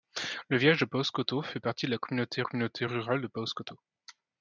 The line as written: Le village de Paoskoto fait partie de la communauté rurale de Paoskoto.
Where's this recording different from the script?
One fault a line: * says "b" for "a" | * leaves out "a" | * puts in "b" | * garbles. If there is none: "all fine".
* puts in "communauté"